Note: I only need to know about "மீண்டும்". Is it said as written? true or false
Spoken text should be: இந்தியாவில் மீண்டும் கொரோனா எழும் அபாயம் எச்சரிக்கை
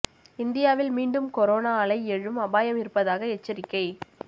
true